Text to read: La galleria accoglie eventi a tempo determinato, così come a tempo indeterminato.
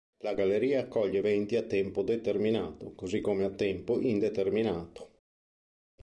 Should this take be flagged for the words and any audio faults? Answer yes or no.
no